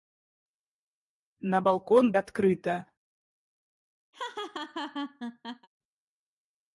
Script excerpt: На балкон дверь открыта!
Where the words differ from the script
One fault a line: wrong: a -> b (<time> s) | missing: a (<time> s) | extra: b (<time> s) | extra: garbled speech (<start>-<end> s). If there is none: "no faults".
missing: дверь (2.1 s)